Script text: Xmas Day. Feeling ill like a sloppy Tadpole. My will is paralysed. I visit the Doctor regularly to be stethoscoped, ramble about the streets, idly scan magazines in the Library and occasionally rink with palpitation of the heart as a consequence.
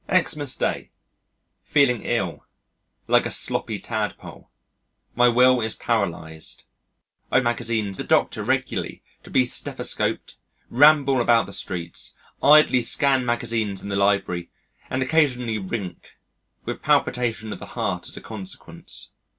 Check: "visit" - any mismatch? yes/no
yes